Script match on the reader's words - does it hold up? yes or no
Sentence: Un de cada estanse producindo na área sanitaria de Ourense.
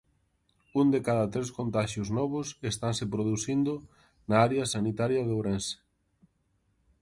no